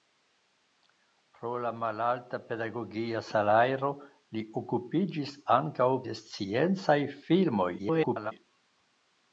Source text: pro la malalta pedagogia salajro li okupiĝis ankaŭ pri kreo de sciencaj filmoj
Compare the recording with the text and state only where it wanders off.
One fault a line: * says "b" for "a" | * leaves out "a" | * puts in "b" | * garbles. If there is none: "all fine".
* leaves out "pri kreo"
* garbles